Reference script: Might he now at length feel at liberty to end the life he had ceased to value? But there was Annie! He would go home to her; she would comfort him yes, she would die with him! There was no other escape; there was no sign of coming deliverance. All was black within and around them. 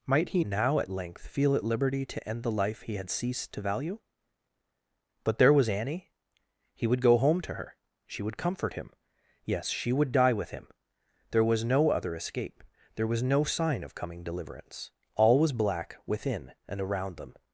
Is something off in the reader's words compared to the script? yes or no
no